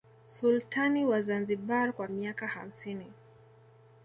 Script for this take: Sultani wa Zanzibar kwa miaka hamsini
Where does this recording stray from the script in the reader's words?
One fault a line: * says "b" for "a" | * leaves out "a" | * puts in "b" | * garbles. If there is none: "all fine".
all fine